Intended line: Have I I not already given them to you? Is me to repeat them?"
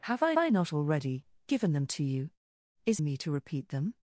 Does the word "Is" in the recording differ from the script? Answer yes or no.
no